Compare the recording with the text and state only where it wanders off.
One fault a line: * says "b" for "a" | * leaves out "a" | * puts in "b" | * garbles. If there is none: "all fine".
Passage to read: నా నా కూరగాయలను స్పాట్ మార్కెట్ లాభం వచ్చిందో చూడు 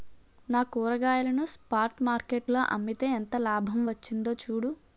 * leaves out "నా"
* puts in "లో అమ్మితే ఎంత"